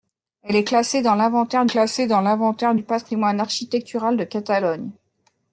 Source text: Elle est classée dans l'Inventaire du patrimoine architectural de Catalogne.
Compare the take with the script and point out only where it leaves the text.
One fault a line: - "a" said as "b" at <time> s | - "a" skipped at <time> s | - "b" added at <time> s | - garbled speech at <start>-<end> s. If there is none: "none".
- "classée dans l'Inventaire" added at 1.7 s